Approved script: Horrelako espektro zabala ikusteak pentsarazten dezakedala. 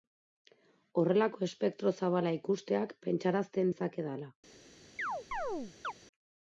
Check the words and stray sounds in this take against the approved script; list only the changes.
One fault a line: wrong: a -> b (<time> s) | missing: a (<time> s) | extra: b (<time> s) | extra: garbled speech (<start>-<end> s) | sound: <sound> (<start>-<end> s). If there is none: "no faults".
sound: chirp (5.0-5.9 s)